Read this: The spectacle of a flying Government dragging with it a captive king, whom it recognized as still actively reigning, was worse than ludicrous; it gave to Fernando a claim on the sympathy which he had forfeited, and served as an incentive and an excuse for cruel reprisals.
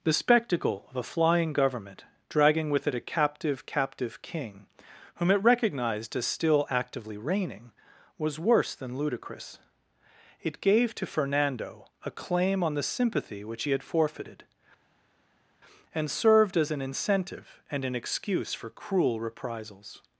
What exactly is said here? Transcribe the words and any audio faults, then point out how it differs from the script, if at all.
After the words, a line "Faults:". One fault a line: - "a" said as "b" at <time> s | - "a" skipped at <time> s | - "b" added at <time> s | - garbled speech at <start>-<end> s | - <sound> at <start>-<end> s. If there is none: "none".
The spectacle of a flying Government dragging with it a captive captive king, whom it recognized as still actively reigning, was worse than ludicrous; it gave to Fernando a claim on the sympathy which he had forfeited, and served as an incentive and an excuse for cruel reprisals.
Faults:
- "captive" added at 3.7 s